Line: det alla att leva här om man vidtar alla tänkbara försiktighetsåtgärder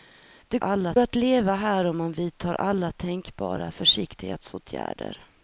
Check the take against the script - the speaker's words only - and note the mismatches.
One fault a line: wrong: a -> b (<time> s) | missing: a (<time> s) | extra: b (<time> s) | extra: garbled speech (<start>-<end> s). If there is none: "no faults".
no faults